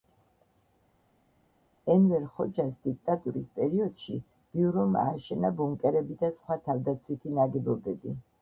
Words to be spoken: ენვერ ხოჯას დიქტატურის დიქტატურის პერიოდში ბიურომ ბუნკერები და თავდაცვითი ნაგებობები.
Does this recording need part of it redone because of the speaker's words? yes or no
yes